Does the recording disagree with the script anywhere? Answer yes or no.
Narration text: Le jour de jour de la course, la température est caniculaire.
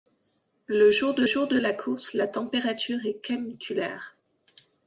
no